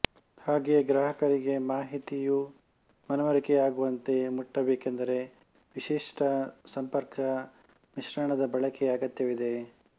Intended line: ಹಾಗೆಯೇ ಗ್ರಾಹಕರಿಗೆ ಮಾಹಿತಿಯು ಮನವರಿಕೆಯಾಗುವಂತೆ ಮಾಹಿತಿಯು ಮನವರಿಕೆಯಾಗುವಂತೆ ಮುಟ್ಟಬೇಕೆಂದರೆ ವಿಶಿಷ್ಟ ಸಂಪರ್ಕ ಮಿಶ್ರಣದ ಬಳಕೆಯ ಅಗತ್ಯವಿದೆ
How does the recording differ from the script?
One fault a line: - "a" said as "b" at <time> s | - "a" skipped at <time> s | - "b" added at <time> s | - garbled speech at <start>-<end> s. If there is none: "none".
- "ಮಾಹಿತಿಯು ಮನವರಿಕೆಯಾಗುವಂತೆ" skipped at 4.2 s